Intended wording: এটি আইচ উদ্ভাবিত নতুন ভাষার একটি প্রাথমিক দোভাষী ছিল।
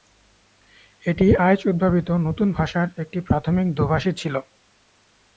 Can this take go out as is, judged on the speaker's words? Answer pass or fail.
pass